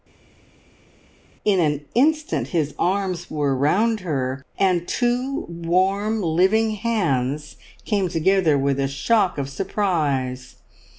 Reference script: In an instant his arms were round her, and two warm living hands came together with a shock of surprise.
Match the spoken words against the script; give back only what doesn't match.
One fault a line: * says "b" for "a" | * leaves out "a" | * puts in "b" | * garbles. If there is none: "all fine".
all fine